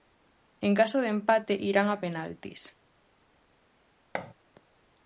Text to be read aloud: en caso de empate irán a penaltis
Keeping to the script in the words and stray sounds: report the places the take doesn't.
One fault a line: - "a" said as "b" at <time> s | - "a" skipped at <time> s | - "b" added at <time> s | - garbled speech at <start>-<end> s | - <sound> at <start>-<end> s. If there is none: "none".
- thud at 4.1-4.3 s